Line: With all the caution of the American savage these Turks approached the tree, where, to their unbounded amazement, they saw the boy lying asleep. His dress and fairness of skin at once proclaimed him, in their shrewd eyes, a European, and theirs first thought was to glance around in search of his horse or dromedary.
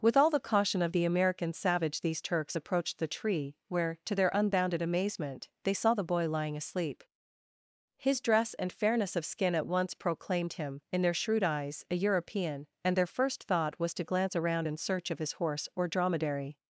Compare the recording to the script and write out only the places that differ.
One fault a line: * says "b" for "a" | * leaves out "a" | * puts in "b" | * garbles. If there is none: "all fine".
* says "their" for "theirs"